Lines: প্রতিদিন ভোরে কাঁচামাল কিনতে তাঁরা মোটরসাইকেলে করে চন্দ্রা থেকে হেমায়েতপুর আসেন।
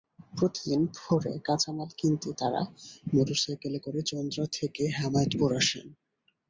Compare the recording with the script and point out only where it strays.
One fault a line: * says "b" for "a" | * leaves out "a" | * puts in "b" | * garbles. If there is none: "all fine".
all fine